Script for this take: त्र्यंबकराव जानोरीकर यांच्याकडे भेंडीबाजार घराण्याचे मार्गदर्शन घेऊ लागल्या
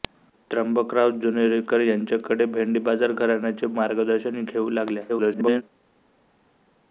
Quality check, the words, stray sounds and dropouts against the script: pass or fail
fail